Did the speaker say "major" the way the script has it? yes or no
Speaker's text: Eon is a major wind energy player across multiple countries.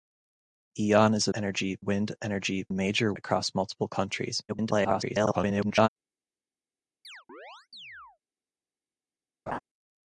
no